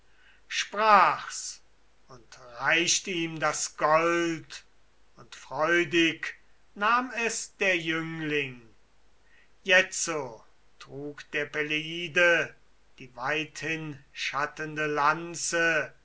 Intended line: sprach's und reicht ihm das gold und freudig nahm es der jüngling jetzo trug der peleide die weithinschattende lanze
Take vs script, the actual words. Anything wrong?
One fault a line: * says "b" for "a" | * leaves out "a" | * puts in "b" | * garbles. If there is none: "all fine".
all fine